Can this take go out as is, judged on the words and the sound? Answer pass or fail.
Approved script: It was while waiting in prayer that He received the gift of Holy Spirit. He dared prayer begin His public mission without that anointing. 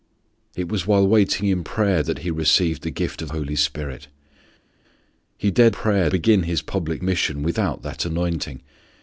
pass